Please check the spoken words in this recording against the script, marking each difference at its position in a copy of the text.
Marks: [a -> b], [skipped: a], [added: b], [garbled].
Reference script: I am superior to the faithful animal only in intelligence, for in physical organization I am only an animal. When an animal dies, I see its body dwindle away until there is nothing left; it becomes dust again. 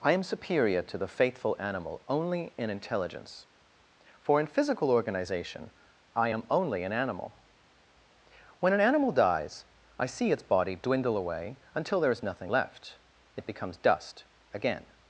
I am superior to the faithful animal only in intelligence, for in physical organization I am only an animal. When an animal dies, I see its body dwindle away until there is nothing left; it becomes dust again.